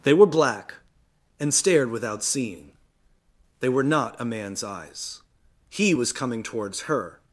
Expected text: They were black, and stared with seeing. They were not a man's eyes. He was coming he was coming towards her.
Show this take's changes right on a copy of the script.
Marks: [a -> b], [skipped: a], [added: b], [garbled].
They were black, and stared [with -> without] seeing. They were not a man's eyes. He was coming [skipped: he was coming] towards her.